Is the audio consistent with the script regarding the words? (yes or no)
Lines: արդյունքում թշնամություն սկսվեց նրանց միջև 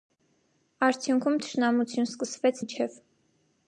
no